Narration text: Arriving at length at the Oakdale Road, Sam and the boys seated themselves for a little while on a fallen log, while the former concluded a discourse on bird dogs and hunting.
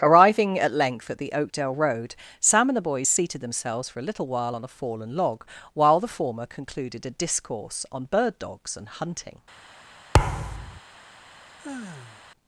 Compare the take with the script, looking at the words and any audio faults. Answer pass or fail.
fail